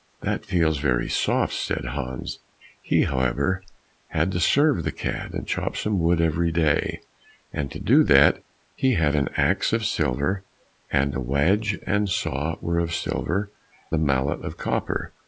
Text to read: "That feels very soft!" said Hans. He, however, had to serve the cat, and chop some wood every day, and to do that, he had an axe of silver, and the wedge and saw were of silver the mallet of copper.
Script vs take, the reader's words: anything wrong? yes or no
no